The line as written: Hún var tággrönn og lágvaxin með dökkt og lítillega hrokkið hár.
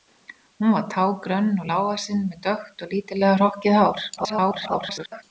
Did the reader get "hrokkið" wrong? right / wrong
right